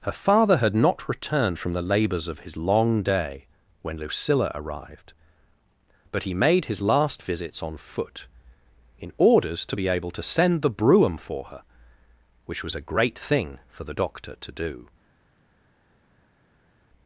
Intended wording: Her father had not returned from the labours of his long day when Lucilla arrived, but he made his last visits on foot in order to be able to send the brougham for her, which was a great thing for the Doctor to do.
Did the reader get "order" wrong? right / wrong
wrong